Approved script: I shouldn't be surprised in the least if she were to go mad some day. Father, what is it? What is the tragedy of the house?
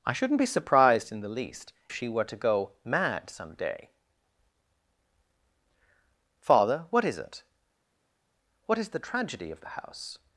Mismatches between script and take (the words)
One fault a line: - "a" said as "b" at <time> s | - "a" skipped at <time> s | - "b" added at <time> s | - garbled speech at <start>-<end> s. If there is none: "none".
- "if" skipped at 1.7 s